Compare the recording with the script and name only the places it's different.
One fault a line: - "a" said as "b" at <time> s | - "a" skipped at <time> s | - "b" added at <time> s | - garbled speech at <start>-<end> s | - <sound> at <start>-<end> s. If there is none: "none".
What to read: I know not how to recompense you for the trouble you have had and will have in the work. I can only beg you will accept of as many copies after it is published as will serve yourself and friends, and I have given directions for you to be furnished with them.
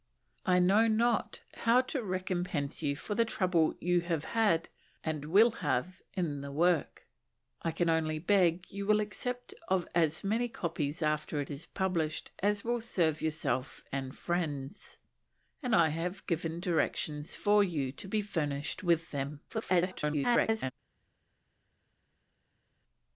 - garbled speech at 19.5-20.7 s